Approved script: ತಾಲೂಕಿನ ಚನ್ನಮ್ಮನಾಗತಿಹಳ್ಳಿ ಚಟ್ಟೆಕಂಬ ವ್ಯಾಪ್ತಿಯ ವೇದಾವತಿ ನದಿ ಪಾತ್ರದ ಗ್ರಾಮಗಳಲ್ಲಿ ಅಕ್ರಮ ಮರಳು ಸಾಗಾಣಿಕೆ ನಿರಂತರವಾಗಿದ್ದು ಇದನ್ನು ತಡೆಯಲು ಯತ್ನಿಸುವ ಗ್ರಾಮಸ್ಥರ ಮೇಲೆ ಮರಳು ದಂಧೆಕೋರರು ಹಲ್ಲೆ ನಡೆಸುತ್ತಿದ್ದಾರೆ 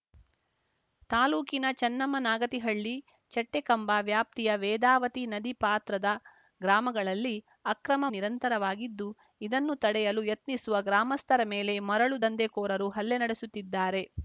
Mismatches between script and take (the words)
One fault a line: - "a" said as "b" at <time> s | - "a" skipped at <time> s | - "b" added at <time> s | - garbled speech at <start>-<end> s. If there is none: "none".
- "ಮರಳು ಸಾಗಾಣಿಕೆ" skipped at 8.1 s